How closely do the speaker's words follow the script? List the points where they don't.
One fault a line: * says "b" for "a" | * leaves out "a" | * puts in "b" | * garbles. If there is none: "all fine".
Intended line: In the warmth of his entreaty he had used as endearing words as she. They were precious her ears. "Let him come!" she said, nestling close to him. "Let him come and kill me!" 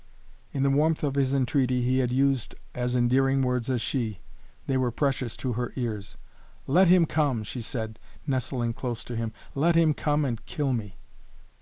* puts in "to"